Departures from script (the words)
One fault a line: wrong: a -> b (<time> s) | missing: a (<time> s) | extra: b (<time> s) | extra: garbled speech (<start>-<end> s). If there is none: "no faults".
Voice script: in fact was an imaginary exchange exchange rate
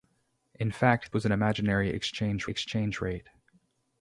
no faults